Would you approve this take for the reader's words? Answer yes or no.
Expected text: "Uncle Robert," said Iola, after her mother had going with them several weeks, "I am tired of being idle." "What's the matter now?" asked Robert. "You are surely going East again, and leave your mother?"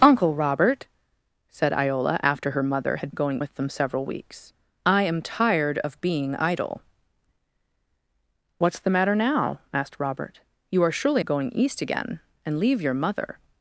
yes